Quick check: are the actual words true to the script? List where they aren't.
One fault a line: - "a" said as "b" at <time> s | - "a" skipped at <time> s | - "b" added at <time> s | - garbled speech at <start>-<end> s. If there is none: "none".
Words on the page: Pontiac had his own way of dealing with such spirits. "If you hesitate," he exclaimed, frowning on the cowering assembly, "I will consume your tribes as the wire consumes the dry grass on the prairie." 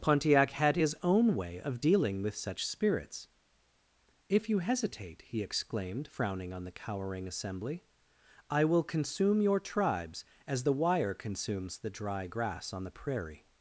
none